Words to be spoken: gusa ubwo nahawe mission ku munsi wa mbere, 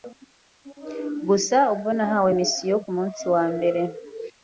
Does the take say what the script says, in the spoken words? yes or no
yes